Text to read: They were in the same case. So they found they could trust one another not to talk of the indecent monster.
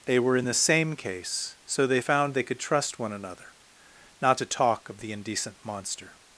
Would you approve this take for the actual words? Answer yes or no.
yes